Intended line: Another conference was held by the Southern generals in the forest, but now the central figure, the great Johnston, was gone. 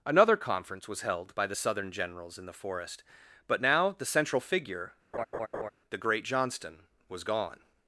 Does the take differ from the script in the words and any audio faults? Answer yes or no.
yes